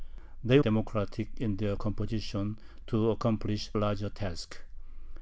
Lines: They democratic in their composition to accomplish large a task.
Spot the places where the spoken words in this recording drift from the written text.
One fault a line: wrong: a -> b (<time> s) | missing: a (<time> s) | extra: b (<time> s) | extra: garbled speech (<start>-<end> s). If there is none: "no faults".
no faults